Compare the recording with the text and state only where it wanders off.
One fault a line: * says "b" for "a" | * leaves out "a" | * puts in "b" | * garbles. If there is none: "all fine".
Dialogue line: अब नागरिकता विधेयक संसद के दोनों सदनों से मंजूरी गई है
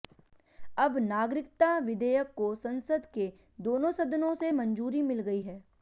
* puts in "को"
* puts in "मिल"